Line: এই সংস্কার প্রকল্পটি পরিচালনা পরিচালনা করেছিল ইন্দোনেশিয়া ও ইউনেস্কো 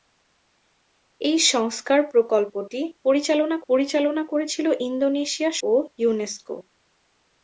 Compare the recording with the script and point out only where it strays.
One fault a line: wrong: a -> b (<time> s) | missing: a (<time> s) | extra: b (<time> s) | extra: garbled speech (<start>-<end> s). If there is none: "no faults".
no faults